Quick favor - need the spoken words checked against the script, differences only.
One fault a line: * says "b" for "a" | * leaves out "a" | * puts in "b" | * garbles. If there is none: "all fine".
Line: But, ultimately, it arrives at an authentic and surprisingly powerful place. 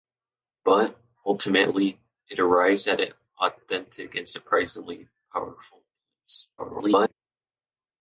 * garbles